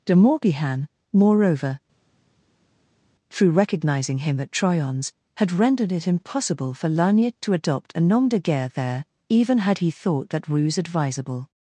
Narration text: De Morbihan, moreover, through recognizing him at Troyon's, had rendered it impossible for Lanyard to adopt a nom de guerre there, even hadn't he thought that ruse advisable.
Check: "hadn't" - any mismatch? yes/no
yes